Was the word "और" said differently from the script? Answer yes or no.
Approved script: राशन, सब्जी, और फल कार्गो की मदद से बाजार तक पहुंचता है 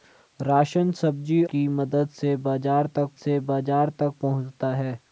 yes